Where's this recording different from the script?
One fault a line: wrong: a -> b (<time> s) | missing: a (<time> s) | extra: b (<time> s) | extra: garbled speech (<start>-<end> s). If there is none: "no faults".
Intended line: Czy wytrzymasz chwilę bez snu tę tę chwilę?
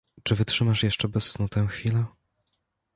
wrong: chwilę -> jeszcze (0.8 s)
missing: tę (1.7 s)